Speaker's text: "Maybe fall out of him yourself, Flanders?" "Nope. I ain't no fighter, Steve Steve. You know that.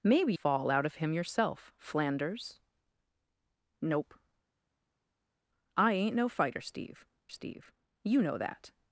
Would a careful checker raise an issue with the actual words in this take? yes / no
no